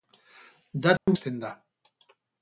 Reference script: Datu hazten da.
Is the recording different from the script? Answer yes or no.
no